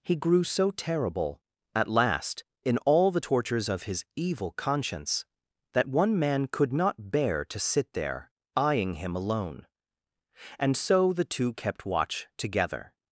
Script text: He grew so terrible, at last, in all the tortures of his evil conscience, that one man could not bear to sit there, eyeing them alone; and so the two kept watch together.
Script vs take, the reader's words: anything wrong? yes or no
yes